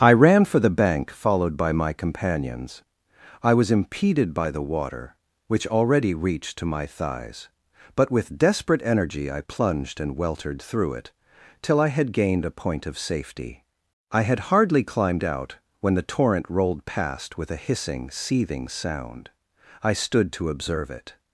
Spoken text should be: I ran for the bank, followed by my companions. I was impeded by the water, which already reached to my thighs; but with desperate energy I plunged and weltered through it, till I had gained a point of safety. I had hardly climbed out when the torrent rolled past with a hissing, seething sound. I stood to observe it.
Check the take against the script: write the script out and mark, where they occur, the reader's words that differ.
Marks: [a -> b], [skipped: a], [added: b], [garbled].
I ran for the bank, followed by my companions. I was impeded by the water, which already reached to my thighs; but with desperate energy I plunged and weltered through it, till I had gained a point of safety. I had hardly climbed out when the torrent rolled past with a hissing, seething sound. I stood to observe it.